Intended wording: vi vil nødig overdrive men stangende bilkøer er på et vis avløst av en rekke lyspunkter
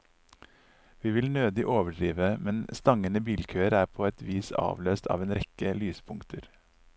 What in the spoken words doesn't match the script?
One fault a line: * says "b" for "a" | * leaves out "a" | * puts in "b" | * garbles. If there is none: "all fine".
all fine